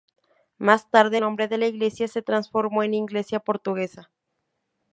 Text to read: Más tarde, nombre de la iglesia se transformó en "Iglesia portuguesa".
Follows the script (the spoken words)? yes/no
yes